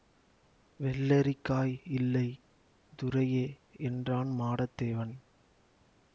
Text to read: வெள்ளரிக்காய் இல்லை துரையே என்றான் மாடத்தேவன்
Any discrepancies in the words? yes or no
no